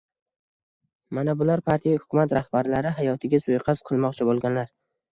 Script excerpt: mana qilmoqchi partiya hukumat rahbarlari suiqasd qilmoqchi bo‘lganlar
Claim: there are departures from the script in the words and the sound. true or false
true